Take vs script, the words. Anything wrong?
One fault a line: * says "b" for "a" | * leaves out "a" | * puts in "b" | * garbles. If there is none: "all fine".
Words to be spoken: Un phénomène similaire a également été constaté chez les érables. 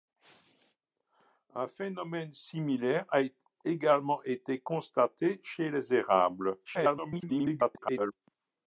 * garbles